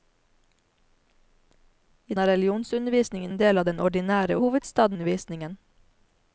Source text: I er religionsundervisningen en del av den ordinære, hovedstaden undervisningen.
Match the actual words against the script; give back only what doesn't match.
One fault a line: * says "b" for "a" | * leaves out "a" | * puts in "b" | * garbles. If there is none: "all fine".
all fine